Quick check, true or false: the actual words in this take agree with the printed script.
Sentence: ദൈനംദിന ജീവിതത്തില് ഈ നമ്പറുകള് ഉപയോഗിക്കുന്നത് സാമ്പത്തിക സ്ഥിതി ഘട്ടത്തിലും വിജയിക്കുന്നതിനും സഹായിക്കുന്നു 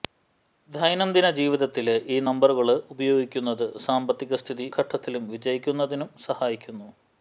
true